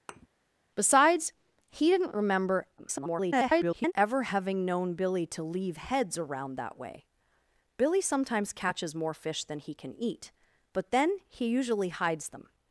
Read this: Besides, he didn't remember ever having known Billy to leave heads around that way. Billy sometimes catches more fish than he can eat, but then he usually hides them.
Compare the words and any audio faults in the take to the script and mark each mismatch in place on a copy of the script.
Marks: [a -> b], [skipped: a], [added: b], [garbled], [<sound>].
[thud] Besides, he didn't remember [garbled] ever having known Billy to leave heads around that way. Billy sometimes catches more fish than he can eat, but then he usually hides them.